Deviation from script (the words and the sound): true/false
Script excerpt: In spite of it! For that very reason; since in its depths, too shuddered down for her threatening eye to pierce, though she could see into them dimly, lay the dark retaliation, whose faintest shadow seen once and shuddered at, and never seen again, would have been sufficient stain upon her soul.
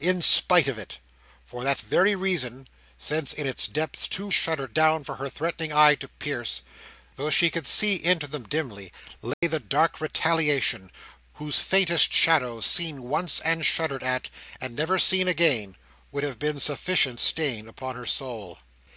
true